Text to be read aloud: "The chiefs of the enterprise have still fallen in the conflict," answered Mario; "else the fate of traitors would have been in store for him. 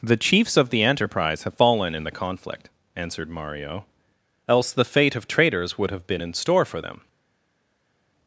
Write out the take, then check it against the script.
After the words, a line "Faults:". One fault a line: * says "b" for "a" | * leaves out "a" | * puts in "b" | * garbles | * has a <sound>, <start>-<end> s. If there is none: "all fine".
"The chiefs of the enterprise have fallen in the conflict," answered Mario; "else the fate of traitors would have been in store for them.
Faults:
* leaves out "still"
* says "them" for "him"